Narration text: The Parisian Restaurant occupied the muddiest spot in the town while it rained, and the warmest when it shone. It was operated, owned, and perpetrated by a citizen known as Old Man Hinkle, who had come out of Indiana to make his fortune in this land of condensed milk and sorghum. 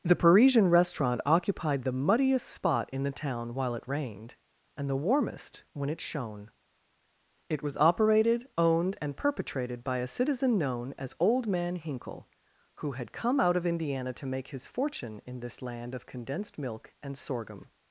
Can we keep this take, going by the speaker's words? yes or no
yes